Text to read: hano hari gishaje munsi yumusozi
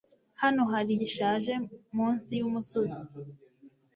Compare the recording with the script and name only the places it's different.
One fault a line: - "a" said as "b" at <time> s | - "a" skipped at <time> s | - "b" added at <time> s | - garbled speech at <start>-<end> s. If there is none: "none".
none